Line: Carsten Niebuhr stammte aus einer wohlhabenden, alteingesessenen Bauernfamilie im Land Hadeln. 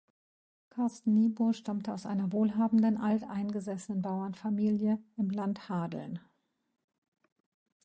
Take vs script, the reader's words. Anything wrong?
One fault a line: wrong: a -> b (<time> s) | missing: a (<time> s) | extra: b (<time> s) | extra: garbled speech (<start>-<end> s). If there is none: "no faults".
no faults